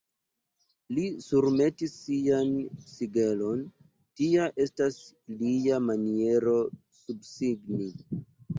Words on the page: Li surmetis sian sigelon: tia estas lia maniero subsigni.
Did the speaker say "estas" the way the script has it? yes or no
yes